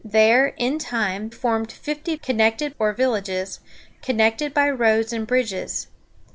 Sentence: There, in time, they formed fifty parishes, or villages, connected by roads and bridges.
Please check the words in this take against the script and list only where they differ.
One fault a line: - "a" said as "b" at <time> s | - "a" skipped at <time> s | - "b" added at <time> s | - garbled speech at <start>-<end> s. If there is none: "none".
- "they" skipped at 1.3 s
- "parishes" said as "connected" at 2.2 s